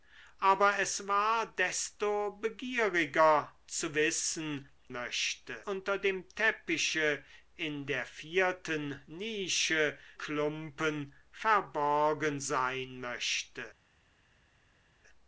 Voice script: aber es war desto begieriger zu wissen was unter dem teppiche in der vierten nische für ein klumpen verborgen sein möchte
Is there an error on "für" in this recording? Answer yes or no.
yes